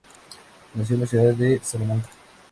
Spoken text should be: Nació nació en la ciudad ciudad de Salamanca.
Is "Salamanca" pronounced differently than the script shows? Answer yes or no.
no